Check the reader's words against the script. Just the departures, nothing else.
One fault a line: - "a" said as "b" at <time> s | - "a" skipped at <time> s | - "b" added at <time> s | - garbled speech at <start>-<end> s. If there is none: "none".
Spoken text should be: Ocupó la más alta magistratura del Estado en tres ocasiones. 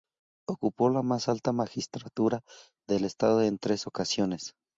none